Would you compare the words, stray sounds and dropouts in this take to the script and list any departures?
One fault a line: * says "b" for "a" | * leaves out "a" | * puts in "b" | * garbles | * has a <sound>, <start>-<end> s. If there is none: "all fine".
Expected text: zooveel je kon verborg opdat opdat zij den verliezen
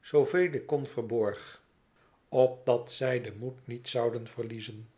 * says "ik" for "je"
* leaves out "opdat"
* puts in "moed niet zouden"